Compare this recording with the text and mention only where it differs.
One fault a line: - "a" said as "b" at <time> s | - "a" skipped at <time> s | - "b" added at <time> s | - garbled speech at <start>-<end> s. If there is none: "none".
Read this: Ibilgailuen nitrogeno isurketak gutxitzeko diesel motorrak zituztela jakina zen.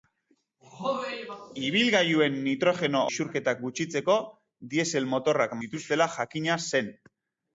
none